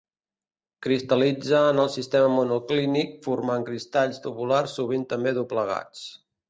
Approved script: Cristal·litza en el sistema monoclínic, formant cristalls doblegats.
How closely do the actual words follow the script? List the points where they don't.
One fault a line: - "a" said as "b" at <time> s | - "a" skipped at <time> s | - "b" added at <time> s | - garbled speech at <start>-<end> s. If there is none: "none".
- "tabulars sovint també" added at 4.3 s